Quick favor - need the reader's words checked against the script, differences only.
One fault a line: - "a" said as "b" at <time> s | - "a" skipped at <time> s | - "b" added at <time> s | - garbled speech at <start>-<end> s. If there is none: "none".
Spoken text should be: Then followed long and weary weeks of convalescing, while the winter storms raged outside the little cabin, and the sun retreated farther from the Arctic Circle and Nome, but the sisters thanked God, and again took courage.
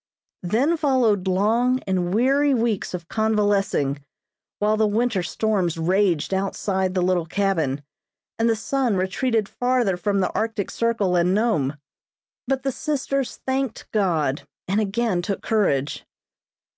none